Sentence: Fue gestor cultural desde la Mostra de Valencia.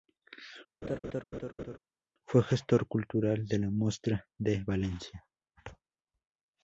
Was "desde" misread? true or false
true